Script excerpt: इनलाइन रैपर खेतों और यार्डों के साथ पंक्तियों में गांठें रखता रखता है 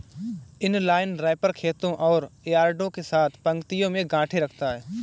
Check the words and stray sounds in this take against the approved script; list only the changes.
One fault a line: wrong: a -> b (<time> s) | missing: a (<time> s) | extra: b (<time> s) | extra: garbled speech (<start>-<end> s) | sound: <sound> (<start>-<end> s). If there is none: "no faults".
missing: रखता (4.7 s)